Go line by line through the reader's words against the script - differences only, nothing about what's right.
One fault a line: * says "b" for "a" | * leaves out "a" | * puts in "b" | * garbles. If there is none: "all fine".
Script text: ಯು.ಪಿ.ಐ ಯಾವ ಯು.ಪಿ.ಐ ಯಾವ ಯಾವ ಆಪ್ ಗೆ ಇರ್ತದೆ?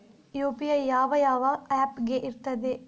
* leaves out "ಯು.ಪಿ.ಐ ಯಾವ"